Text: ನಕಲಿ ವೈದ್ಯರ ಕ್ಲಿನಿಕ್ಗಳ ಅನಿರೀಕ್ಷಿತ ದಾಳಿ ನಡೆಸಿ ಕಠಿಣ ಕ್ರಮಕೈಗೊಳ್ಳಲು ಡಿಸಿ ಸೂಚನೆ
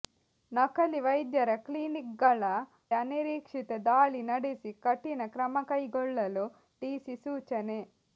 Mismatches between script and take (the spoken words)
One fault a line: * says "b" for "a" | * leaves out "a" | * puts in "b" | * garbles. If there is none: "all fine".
all fine